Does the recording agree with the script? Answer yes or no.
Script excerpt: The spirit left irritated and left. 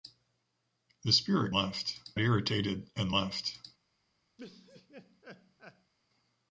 yes